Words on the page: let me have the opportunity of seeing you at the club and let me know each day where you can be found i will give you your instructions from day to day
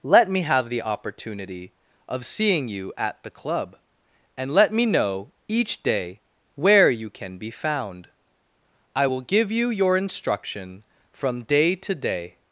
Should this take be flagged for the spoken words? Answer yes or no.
yes